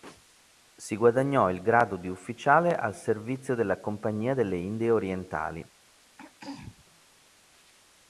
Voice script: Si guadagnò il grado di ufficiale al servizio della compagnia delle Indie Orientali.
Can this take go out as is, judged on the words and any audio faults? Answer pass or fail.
fail